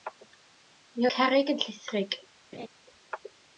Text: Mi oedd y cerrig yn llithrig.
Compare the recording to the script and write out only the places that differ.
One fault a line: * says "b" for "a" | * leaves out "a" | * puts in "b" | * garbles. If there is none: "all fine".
* leaves out "oedd"